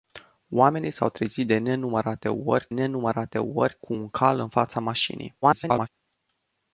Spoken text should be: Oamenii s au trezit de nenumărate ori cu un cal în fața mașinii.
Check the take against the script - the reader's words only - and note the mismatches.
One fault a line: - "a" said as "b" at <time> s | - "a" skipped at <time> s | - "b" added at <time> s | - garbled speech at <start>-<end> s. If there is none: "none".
- "nenumărate ori" added at 2.7 s
- garbled speech at 5.4-5.9 s